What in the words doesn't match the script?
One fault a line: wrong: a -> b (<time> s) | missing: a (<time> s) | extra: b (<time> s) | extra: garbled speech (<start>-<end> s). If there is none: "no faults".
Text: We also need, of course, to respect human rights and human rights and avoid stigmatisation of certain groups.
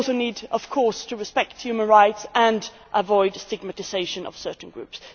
missing: human rights and (2.7 s)